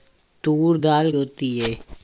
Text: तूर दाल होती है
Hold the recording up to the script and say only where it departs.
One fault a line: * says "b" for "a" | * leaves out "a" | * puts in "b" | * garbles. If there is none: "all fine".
all fine